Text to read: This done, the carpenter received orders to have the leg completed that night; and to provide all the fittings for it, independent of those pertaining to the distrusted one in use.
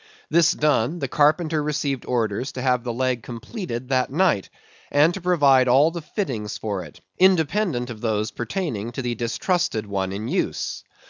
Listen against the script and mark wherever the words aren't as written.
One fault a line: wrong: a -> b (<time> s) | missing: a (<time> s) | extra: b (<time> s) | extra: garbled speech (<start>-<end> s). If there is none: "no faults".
no faults